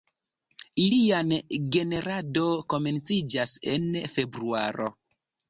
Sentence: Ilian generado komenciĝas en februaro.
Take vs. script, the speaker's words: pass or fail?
pass